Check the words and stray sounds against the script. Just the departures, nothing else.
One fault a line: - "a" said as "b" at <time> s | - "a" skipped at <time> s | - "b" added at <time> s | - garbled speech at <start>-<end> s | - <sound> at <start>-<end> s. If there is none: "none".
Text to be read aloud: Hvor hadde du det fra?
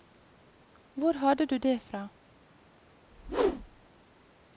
- whoosh at 3.1-3.9 s